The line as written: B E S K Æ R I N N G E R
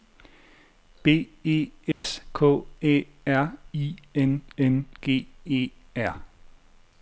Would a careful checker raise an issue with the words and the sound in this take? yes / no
yes